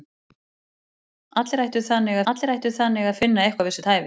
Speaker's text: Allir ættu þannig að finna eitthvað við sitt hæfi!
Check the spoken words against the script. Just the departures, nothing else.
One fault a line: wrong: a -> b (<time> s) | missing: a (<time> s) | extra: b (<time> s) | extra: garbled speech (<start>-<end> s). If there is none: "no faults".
extra: allir ættu þannig (2.3 s)